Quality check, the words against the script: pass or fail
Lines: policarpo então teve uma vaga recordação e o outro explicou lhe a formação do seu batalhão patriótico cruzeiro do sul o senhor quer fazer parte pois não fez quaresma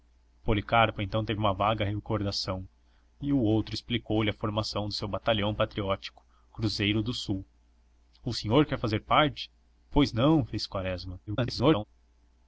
fail